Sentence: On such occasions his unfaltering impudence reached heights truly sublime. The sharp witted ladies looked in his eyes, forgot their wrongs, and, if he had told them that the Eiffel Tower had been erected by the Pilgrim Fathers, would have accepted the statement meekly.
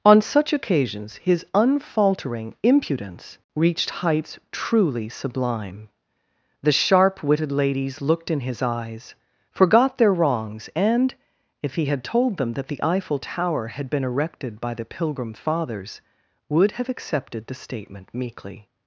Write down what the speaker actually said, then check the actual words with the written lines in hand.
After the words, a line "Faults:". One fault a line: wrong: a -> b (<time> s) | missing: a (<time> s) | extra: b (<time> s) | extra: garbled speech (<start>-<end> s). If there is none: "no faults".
On such occasions his unfaltering impudence reached heights truly sublime. The sharp witted ladies looked in his eyes, forgot their wrongs, and, if he had told them that the Eiffel Tower had been erected by the Pilgrim Fathers, would have accepted the statement meekly.
Faults:
no faults